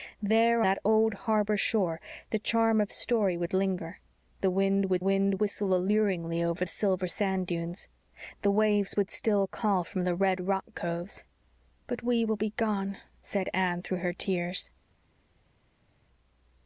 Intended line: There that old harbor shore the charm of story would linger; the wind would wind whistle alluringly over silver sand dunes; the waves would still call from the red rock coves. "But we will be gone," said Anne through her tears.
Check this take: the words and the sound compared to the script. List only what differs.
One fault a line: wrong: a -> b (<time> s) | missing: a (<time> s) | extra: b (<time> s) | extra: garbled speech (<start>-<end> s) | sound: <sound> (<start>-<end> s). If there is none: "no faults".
no faults